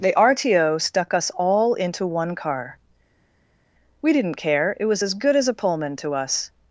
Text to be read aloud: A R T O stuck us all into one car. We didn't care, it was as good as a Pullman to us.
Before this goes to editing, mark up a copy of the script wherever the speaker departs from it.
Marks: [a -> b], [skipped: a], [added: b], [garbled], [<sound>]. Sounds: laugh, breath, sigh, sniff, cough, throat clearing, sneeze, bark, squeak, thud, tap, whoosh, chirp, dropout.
[A -> The] R T O stuck us all into one car. We didn't care, it was as good as a Pullman to us.